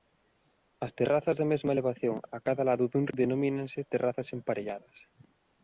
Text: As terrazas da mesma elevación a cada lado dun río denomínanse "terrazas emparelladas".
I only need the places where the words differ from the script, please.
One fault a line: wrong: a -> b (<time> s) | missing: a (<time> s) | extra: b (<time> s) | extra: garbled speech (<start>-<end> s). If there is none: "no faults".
missing: río (3.0 s)